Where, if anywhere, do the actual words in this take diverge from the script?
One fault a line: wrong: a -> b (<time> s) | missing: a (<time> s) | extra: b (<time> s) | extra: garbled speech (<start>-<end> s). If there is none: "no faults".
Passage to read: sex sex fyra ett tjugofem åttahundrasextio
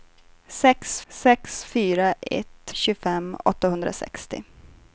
no faults